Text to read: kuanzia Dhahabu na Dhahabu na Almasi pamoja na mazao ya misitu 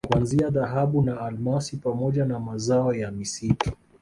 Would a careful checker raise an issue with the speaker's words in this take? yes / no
yes